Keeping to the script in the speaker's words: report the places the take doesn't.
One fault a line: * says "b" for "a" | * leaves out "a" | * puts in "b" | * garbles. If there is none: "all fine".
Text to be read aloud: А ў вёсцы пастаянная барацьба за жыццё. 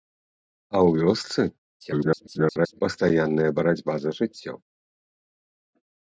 * garbles